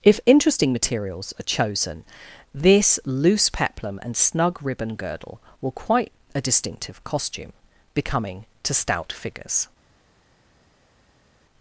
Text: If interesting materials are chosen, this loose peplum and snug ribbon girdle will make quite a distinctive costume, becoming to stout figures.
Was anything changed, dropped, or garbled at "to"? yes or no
no